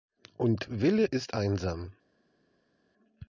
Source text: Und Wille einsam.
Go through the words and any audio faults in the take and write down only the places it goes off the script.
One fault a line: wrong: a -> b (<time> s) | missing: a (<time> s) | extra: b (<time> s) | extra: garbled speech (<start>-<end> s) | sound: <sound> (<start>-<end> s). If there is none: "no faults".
extra: ist (1.0 s)